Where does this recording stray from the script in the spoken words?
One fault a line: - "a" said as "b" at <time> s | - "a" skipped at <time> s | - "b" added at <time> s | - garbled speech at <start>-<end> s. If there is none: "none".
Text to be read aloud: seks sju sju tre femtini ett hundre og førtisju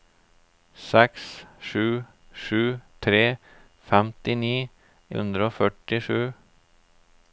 - "ett" skipped at 4.5 s